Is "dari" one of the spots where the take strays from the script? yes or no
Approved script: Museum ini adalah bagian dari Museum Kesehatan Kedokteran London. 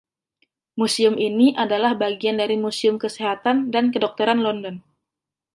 no